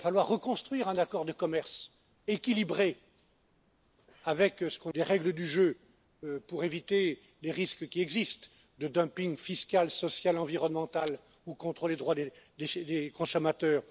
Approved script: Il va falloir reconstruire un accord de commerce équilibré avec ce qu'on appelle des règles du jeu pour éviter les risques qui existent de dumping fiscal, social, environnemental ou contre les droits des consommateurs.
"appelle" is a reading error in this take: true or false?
true